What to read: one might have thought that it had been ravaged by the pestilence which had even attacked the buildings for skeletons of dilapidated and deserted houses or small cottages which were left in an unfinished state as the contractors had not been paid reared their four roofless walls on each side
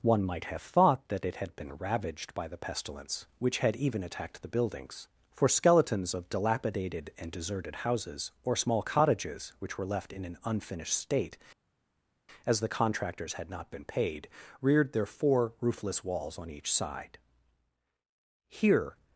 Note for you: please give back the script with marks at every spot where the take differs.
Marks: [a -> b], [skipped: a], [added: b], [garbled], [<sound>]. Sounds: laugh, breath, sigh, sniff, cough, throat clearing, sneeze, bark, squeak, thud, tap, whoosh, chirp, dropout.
one might have thought that it had been ravaged by the pestilence which had even attacked the buildings for skeletons of dilapidated and deserted houses or small cottages which were left in an unfinished state as the contractors had not been paid reared their four roofless walls on each side [added: here]